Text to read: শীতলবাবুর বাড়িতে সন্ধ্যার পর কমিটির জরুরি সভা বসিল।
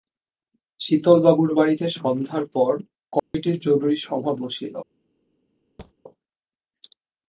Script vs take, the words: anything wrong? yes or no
no